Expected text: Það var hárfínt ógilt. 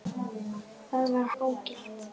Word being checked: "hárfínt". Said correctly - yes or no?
no